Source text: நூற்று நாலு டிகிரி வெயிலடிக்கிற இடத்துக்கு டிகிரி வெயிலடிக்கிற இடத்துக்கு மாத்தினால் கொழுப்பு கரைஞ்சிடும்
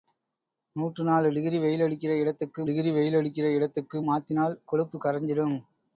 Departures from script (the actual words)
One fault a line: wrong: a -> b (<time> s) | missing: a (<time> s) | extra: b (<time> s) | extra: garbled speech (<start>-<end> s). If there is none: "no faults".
no faults